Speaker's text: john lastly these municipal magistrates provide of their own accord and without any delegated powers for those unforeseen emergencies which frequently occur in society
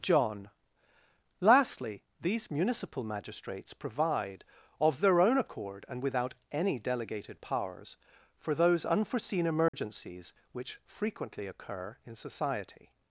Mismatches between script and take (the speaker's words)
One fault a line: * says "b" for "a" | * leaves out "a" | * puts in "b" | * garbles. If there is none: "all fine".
all fine